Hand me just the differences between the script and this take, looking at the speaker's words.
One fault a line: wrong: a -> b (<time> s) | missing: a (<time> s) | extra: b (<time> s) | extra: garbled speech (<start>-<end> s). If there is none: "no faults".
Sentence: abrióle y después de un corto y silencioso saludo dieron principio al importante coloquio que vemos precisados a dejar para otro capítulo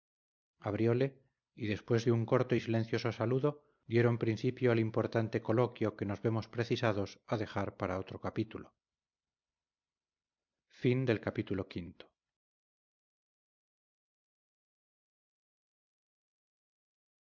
extra: nos (6.0 s)